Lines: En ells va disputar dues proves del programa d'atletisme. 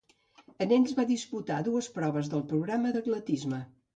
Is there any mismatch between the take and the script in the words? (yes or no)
no